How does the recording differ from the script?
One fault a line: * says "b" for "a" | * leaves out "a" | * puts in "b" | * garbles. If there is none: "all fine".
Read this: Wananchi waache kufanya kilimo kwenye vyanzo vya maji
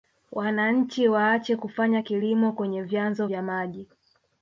all fine